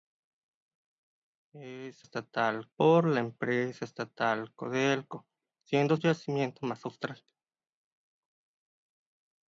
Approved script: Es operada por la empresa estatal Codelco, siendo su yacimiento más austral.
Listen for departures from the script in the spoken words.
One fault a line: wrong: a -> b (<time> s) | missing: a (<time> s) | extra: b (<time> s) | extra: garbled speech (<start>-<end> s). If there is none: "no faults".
wrong: operada -> estatal (2.0 s)
missing: su (5.9 s)